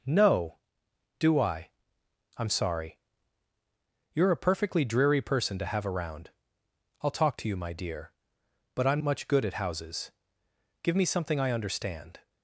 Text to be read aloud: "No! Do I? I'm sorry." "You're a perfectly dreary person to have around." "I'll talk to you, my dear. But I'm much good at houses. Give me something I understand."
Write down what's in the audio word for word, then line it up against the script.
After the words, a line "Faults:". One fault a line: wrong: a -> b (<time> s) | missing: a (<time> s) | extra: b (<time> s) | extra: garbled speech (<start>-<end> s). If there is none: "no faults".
"No! Do I? I'm sorry." "You're a perfectly dreary person to have around." "I'll talk to you, my dear. But I'm much good at houses. Give me something I understand."
Faults:
no faults